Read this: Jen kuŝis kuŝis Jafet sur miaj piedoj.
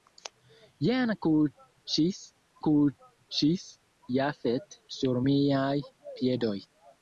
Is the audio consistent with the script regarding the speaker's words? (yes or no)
yes